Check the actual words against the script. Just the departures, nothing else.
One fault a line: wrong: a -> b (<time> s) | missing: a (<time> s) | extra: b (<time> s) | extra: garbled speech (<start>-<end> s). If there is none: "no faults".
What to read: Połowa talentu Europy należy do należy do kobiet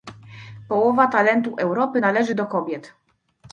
missing: należy do (2.5 s)